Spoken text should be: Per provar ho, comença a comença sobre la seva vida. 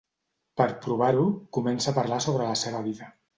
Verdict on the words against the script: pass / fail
fail